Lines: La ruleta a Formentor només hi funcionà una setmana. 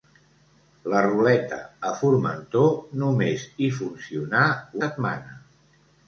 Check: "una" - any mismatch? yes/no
yes